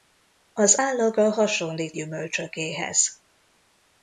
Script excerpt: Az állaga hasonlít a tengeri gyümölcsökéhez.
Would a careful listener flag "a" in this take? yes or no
yes